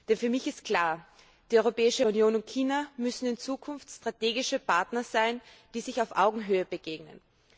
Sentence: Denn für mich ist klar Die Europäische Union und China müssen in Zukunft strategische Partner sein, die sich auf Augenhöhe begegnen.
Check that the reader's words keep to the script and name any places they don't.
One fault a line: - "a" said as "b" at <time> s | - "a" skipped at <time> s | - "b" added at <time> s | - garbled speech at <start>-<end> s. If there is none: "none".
none